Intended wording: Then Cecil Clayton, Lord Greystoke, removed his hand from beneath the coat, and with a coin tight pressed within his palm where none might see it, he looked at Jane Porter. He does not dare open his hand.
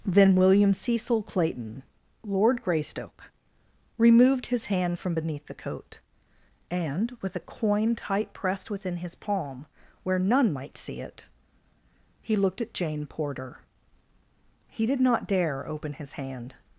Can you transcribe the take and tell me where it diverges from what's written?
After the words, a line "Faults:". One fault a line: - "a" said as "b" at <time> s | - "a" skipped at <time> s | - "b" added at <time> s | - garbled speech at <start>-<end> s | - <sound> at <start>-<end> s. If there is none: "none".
Then William Cecil Clayton, Lord Greystoke, removed his hand from beneath the coat, and with a coin tight pressed within his palm where none might see it, he looked at Jane Porter. He did not dare open his hand.
Faults:
- "William" added at 0.3 s
- "does" said as "did" at 14.8 s